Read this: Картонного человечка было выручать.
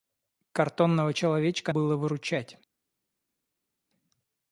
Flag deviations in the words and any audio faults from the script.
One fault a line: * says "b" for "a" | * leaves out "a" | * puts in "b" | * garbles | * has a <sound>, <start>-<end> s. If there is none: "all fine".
all fine